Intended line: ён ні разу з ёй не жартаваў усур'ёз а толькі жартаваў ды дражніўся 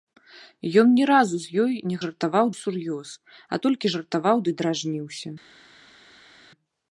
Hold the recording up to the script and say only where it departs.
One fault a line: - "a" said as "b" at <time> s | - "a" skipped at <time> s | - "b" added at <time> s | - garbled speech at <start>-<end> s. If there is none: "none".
none